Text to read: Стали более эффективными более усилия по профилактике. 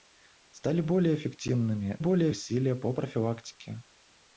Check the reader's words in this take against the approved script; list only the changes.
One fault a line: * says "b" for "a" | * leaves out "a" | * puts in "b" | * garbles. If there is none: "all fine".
all fine